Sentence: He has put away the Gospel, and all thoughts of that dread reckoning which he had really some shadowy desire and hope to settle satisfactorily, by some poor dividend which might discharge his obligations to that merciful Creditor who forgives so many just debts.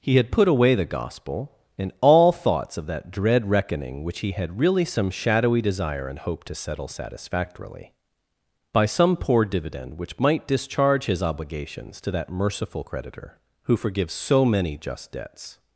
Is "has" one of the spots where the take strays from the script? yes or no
yes